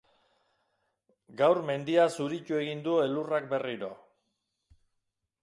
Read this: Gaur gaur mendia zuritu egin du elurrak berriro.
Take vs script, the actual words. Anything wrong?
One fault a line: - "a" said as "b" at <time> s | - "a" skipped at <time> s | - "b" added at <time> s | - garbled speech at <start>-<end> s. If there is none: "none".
- "gaur" skipped at 1.6 s